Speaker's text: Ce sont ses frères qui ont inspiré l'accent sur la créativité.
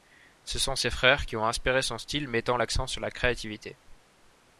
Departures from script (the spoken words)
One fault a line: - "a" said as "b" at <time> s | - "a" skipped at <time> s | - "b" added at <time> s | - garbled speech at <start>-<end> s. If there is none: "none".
- "son style mettant" added at 1.8 s